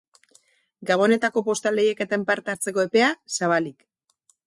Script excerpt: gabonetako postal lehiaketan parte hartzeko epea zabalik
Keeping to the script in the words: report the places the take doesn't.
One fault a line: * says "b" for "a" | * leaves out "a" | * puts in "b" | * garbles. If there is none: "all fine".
all fine